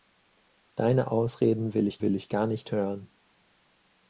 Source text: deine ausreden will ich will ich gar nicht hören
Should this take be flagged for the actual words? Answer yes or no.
no